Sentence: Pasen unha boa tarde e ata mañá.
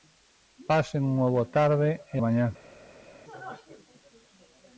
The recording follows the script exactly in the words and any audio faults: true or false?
false